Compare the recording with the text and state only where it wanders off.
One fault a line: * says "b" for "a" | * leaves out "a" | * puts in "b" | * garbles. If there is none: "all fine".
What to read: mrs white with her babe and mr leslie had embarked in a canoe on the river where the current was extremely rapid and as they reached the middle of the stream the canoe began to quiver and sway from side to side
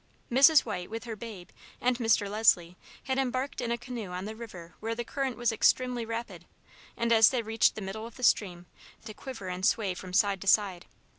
* leaves out "the canoe began"